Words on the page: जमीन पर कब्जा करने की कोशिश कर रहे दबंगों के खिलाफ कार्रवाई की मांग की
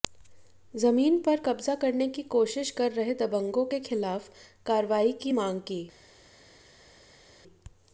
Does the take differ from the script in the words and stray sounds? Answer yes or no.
no